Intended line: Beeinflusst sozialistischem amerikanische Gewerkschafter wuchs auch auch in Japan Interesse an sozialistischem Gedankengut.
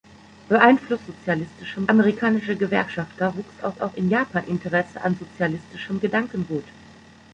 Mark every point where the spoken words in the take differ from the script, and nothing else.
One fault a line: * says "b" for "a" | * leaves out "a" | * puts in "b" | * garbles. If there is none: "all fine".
all fine